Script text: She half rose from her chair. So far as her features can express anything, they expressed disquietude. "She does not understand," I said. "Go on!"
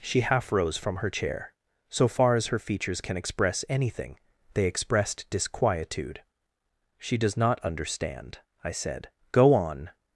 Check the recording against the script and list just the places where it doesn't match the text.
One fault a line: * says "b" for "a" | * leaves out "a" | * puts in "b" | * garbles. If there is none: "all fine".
all fine